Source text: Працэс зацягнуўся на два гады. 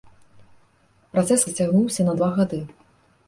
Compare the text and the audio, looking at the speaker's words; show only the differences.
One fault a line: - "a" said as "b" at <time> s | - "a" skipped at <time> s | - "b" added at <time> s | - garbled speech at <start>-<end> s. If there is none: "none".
none